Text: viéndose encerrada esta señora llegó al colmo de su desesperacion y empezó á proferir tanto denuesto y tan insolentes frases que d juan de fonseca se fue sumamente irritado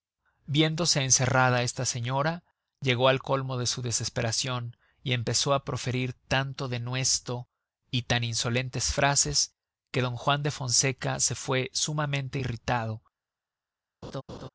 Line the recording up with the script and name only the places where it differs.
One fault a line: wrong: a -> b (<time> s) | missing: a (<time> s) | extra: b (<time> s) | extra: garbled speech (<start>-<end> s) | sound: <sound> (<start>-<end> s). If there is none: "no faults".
sound: laugh (14.0-14.5 s)